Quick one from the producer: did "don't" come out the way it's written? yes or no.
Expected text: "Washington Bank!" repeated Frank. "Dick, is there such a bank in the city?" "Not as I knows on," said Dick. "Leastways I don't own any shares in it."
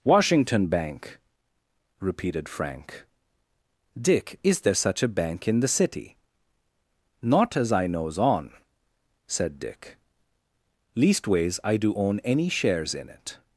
no